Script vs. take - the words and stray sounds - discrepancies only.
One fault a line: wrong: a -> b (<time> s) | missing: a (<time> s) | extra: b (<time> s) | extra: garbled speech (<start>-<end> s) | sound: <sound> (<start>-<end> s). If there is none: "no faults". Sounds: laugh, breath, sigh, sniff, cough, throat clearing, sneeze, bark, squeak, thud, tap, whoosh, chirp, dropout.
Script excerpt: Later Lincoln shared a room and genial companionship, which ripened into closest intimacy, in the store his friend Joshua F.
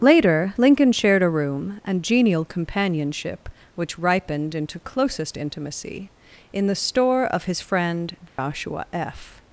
extra: of (7.3 s)
sound: dropout (8.3-8.4 s)